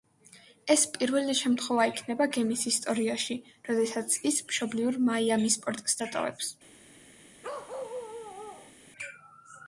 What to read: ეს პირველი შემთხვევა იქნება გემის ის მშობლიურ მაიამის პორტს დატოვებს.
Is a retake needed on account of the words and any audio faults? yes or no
yes